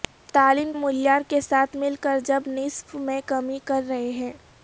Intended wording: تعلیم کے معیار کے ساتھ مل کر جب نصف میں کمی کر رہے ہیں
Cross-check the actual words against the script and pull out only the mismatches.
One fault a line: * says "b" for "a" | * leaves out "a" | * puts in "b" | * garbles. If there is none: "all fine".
* leaves out "کے"